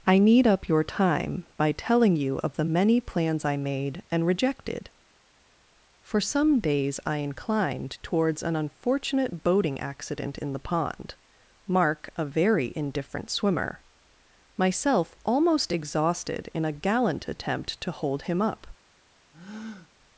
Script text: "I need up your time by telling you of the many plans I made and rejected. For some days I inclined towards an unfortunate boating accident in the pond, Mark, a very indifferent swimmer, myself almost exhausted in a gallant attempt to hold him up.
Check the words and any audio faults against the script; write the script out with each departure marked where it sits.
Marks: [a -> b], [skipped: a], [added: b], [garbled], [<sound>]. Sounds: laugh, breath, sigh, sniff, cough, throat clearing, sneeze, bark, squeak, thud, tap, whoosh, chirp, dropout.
"I need up your time by telling you of the many plans I made and rejected. For some days I inclined towards an unfortunate boating accident in the pond, Mark, a very indifferent swimmer, myself almost exhausted in a gallant attempt to hold him up. [breath]